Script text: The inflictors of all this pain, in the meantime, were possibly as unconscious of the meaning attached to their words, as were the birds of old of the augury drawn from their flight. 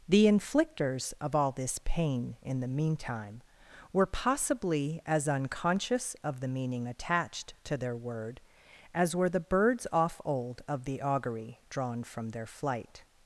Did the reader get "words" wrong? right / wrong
wrong